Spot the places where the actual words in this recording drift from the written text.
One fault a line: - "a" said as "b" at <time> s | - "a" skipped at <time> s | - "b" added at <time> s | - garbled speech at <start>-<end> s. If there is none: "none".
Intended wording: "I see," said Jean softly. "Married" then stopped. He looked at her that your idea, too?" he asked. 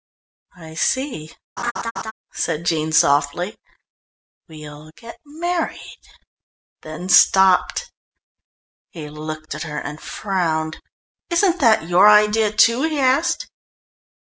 - "We'll get" added at 4.5 s
- "and frowned Isn't" added at 9.8 s